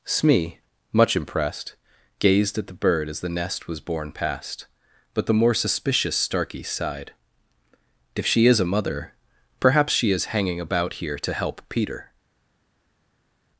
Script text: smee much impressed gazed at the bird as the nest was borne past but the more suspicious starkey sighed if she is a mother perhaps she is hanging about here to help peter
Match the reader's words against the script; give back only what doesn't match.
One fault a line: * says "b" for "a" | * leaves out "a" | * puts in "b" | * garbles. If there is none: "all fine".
all fine